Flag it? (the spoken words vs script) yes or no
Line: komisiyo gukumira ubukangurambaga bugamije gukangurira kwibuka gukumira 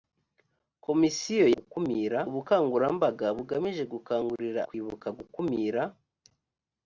no